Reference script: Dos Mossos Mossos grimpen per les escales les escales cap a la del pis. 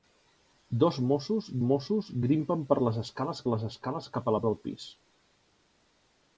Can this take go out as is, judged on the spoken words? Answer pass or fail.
pass